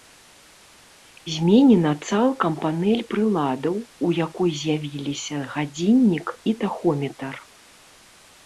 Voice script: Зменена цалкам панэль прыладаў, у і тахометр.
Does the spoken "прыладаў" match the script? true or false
true